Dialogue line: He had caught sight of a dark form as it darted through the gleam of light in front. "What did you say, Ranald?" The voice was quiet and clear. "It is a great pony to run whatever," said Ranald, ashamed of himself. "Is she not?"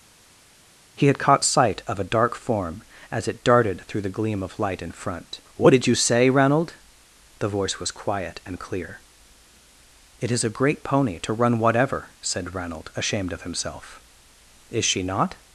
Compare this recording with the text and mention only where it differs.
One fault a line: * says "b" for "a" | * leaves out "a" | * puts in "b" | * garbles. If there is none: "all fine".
all fine